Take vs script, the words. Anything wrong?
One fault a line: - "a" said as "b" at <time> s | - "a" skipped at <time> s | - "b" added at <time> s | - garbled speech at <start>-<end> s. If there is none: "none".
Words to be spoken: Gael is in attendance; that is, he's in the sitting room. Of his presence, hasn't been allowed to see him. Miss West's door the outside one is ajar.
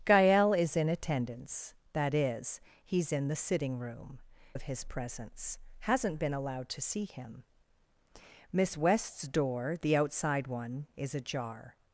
none